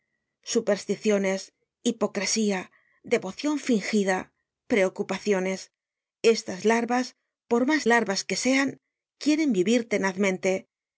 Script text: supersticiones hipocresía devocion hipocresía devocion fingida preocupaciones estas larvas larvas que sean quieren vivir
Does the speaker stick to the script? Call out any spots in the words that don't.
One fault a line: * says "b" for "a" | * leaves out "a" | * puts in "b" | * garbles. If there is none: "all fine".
* leaves out "hipocresía devocion"
* puts in "por mas"